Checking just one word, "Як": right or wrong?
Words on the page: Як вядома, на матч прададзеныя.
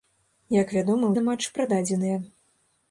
right